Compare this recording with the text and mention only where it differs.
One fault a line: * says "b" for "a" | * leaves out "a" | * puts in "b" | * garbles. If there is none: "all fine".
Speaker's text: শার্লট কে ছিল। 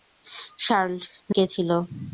all fine